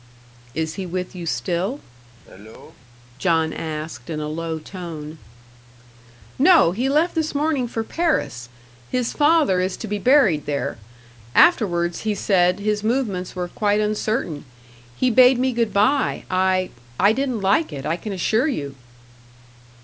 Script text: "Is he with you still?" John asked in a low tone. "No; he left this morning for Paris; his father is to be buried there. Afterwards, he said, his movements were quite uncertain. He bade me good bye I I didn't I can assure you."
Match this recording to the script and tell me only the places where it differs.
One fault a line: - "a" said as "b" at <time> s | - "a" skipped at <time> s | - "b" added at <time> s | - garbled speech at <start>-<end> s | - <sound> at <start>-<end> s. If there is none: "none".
- cough at 2.2-2.8 s
- "like it" added at 17.4 s